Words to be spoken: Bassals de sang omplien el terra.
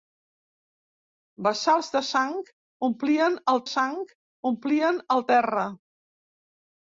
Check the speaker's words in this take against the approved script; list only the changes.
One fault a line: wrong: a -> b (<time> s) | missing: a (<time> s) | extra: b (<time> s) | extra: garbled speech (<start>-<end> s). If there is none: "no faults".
extra: sang omplien el (3.7 s)